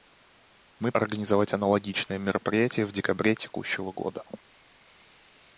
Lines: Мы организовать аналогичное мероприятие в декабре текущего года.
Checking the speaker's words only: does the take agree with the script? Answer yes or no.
yes